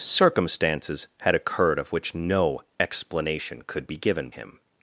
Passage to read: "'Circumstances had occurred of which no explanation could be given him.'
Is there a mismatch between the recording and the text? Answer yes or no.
no